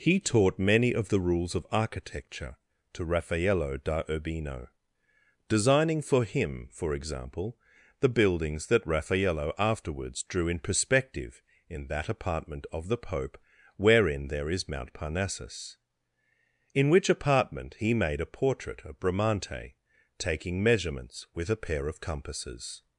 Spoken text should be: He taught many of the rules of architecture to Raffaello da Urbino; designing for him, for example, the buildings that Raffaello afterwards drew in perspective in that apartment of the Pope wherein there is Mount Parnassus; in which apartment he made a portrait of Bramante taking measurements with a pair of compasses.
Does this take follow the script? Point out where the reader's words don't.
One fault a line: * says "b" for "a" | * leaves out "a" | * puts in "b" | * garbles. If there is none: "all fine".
all fine